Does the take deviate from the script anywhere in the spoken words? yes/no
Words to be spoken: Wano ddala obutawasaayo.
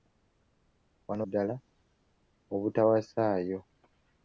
no